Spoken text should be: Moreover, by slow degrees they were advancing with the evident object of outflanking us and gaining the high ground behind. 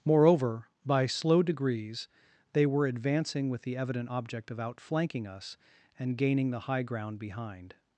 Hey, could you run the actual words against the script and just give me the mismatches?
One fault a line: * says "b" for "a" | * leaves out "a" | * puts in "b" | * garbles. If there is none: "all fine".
all fine